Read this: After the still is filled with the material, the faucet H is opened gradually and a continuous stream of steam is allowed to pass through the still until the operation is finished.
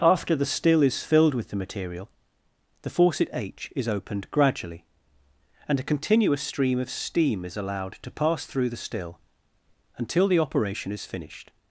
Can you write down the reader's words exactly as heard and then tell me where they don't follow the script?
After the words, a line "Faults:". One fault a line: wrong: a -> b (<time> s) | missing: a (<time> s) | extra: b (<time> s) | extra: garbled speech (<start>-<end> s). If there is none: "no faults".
After the still is filled with the material, the faucet H is opened gradually and a continuous stream of steam is allowed to pass through the still until the operation is finished.
Faults:
no faults